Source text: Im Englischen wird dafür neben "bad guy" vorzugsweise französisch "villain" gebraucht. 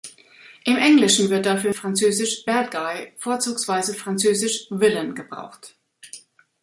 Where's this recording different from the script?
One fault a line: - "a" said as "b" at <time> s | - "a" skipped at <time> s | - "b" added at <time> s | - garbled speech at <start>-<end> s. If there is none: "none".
- "neben" said as "französisch" at 1.7 s